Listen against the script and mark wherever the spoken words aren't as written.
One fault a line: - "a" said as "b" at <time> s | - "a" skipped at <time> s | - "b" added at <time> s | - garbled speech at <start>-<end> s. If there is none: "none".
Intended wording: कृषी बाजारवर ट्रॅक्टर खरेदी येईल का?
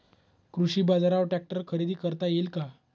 - "करता" added at 1.9 s